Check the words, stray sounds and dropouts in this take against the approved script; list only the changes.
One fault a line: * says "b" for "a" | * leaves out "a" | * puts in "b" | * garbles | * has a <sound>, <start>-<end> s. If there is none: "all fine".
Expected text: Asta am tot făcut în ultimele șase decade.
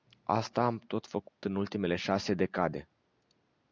* has a dropout, 1.3-1.4 s